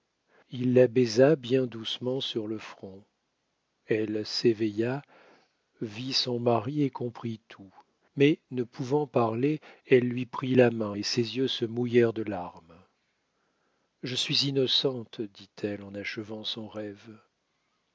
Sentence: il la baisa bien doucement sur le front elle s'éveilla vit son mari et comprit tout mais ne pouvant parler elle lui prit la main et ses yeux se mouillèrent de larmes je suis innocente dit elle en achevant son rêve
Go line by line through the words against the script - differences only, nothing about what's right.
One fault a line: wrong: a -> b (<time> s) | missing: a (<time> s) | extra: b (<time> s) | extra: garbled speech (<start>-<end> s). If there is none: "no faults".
no faults